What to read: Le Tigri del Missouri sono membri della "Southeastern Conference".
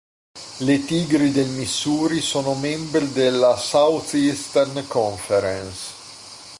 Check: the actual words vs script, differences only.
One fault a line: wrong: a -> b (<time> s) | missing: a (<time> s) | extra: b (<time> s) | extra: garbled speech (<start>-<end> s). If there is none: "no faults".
no faults